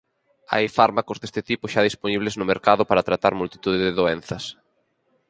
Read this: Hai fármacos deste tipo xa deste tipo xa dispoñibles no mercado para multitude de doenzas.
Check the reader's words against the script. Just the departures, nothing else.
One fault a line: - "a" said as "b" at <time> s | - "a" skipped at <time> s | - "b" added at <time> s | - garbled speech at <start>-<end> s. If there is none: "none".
- "deste tipo xa" skipped at 1.8 s
- "tratar" added at 3.1 s